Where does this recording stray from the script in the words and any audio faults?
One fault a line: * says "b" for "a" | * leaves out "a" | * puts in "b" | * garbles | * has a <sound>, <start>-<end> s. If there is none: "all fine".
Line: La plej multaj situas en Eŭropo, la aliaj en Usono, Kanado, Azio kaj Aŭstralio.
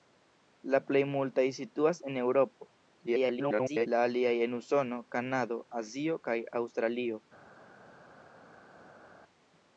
* garbles